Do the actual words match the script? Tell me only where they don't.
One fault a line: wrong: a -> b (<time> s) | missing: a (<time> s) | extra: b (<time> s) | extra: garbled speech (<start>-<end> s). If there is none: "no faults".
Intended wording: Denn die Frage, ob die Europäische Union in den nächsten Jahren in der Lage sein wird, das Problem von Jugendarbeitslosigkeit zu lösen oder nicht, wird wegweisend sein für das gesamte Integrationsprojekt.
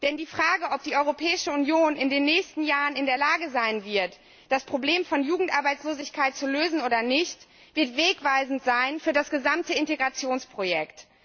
no faults